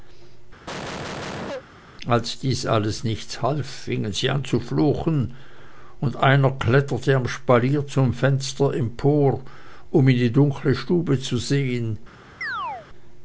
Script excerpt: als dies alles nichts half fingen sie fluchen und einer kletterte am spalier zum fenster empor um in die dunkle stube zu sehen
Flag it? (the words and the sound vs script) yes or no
yes